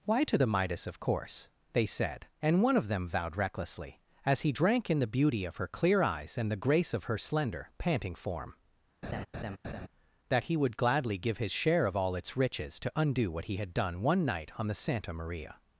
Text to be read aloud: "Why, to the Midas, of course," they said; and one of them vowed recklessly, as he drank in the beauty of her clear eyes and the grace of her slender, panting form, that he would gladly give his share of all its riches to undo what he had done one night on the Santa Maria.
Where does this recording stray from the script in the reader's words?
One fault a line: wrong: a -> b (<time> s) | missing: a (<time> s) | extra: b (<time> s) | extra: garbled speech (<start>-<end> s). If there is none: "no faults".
no faults